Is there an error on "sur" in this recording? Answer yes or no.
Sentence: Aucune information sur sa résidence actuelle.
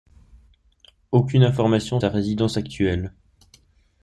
yes